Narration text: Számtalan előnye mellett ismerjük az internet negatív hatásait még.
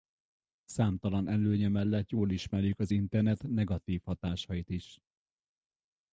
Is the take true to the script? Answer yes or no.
no